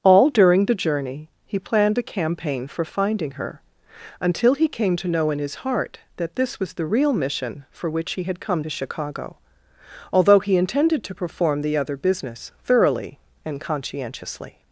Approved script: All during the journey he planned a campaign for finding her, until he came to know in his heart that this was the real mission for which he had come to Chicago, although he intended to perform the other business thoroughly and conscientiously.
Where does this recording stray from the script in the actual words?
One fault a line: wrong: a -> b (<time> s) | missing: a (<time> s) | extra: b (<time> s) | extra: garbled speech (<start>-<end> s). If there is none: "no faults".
no faults